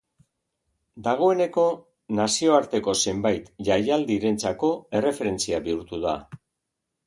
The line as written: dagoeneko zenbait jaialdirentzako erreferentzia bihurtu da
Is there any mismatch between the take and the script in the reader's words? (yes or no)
yes